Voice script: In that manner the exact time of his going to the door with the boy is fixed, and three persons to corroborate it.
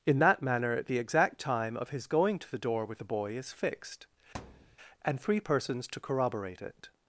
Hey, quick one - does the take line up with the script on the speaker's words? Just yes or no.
yes